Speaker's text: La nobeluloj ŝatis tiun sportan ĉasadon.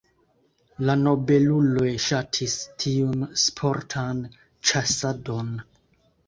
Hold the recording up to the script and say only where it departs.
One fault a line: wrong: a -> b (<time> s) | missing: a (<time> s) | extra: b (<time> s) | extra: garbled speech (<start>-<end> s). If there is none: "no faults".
no faults